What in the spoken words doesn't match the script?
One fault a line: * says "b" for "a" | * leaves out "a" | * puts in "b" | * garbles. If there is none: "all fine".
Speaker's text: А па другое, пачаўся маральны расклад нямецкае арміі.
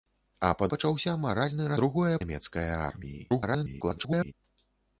* leaves out "другое"
* says "другое" for "расклад"
* garbles